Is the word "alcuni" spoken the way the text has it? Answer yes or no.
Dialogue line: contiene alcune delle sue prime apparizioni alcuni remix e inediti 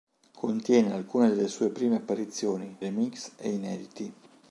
no